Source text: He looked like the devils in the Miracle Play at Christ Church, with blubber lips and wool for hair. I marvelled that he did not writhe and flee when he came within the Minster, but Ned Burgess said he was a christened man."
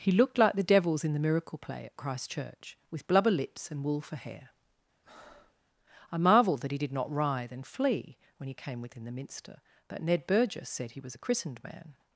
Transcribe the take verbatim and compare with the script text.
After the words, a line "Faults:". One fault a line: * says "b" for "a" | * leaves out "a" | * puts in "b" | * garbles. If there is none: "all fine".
He looked like the devils in the Miracle Play at Christ Church, with blubber lips and wool for hair. I marvelled that he did not writhe and flee when he came within the Minster, but Ned Burgess said he was a christened man."
Faults:
all fine